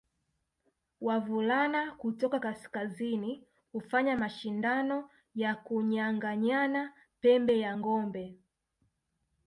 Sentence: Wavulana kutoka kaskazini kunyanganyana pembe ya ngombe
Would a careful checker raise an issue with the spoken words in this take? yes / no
yes